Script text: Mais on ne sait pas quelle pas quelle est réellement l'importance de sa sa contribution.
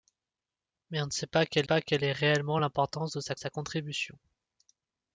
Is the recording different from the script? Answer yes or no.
no